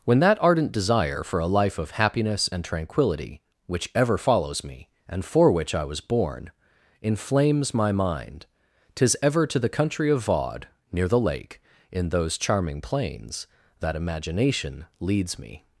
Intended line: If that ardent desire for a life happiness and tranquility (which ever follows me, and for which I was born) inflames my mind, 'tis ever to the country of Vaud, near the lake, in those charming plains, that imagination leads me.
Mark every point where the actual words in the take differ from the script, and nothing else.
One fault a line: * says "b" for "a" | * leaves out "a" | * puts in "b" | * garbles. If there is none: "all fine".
* says "When" for "If"
* puts in "of"